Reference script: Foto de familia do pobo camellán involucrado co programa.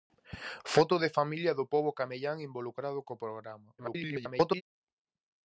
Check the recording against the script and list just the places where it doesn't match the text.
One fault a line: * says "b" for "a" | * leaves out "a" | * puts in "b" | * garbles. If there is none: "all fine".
* garbles